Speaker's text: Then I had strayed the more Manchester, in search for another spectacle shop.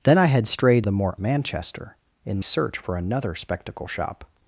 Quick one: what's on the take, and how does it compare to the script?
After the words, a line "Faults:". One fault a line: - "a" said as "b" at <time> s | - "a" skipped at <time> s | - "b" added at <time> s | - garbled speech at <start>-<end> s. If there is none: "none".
Then I had strayed the more Manchester, in search for another spectacle shop.
Faults:
none